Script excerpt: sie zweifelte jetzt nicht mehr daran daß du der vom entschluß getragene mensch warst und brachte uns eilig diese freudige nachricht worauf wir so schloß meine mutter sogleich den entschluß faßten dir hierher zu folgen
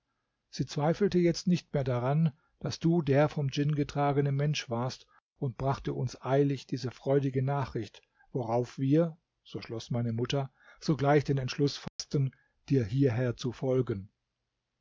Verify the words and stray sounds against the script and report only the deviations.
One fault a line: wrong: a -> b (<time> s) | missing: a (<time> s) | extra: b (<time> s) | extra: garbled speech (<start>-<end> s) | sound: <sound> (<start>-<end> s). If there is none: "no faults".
wrong: entschluß -> djinn (3.5 s)
sound: dropout (11.9-12.0 s)